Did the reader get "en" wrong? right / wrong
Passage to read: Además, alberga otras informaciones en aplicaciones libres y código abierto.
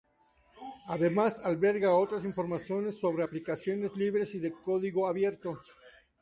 wrong